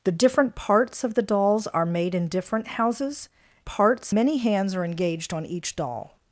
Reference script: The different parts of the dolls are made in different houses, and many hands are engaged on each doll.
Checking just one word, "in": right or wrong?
right